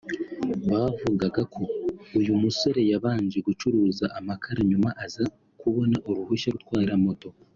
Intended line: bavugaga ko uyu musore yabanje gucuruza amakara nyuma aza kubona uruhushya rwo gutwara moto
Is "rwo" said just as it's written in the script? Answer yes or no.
no